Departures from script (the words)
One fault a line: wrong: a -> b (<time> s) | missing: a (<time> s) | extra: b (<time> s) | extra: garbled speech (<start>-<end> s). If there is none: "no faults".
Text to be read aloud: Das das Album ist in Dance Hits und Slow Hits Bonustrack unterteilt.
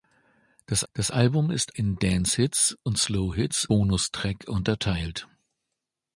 no faults